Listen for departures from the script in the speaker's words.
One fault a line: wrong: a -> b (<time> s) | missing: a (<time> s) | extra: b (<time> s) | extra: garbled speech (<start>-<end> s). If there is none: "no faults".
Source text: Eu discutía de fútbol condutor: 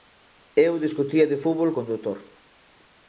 no faults